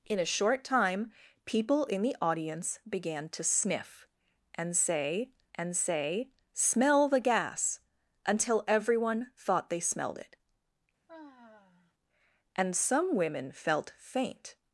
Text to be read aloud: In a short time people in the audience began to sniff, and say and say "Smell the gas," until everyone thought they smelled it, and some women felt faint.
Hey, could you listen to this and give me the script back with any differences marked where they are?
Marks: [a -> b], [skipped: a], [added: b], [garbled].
In a short time people in the audience began to sniff, and say and say "Smell the gas," until everyone thought they smelled it, and some women felt faint.